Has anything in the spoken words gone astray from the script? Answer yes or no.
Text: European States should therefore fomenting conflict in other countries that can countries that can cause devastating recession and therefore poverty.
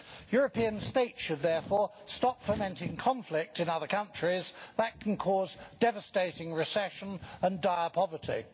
yes